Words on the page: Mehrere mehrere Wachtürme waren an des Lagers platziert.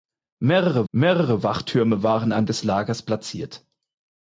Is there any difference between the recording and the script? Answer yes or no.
no